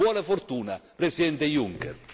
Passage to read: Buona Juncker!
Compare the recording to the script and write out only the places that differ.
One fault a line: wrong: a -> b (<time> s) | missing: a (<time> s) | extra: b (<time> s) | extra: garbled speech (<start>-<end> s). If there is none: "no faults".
extra: fortuna Presidente (0.2 s)